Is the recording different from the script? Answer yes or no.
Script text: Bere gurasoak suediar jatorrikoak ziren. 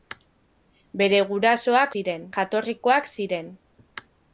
yes